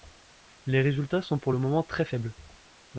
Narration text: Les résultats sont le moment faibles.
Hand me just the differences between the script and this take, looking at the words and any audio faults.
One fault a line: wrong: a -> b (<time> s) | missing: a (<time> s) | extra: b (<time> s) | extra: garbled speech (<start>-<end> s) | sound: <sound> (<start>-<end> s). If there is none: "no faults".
extra: pour (1.4 s)
extra: très (1.8 s)